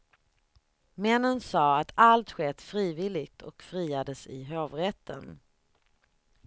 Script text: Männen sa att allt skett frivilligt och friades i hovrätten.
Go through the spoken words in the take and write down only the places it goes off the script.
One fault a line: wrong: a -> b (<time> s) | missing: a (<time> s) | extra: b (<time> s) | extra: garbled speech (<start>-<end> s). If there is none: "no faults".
no faults